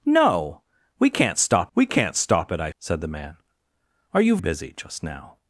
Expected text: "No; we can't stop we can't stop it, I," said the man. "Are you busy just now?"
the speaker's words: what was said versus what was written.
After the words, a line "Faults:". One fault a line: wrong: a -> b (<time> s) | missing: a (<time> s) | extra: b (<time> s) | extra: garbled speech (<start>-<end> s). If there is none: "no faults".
"No; we can't stop we can't stop it, I," said the man. "Are you busy just now?"
Faults:
no faults